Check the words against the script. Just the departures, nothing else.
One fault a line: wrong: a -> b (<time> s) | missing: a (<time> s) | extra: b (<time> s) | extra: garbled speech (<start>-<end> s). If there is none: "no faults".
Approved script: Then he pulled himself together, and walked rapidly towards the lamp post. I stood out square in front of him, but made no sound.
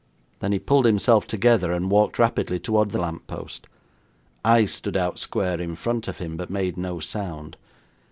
no faults